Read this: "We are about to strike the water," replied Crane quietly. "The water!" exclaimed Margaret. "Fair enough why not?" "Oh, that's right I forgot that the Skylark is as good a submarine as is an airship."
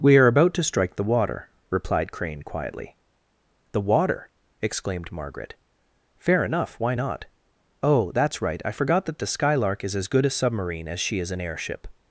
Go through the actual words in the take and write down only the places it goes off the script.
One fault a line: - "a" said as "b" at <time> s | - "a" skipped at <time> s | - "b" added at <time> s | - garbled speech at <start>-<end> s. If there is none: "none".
- "she" added at 11.0 s